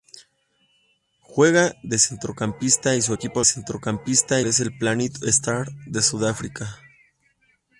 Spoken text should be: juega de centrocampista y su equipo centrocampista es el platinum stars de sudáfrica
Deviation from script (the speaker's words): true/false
false